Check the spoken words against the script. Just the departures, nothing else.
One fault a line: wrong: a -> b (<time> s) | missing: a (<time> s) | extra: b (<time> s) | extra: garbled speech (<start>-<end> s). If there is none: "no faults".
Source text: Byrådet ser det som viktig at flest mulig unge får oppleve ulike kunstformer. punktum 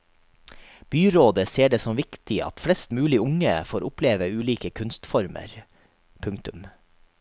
no faults